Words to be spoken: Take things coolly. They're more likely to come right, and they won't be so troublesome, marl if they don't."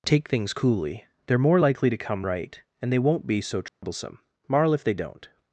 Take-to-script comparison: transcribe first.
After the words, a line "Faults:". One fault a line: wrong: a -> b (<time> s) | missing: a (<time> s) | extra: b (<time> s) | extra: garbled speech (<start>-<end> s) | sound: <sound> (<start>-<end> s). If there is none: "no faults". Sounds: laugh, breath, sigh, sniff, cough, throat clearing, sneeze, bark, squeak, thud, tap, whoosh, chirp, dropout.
Take things coolly. They're more likely to come right, and they won't be so troublesome, marl if they don't."
Faults:
sound: dropout (3.7-3.8 s)